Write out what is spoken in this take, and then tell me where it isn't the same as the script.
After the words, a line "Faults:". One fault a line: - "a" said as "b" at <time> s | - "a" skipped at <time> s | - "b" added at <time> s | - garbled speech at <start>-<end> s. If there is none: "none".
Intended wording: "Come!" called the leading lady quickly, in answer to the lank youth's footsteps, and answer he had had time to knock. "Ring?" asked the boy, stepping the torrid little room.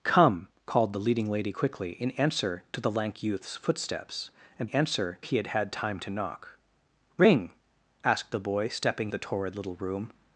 "Come!" called the leading lady quickly, in answer to the lank youth's footsteps, and answer he had had time to knock. "Ring?" asked the boy, stepping the torrid little room.
Faults:
none